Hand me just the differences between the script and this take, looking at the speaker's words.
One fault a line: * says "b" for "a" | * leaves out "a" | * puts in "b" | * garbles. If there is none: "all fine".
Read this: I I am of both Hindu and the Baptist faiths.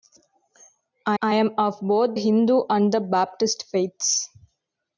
all fine